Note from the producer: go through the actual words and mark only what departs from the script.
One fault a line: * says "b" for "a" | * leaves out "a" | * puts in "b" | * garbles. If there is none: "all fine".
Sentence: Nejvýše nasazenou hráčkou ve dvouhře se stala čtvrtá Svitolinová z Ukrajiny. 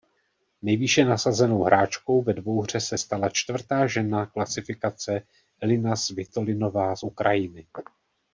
* puts in "žena klasifikace Elina"